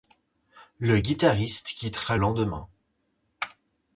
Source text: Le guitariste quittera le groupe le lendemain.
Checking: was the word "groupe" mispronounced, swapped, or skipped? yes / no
yes